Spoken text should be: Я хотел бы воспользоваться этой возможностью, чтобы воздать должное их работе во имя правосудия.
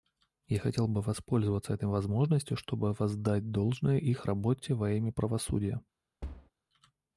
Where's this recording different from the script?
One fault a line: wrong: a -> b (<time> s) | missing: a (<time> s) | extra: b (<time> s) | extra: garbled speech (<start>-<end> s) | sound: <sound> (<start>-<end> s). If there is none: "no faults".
sound: thud (6.2-6.5 s)